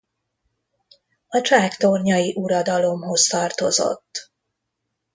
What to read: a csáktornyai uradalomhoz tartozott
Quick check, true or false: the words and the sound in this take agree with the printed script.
true